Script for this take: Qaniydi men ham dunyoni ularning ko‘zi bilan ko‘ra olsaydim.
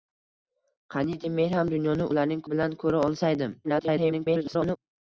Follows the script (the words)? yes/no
no